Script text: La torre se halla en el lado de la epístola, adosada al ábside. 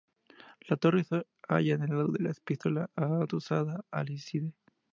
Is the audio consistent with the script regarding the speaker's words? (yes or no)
yes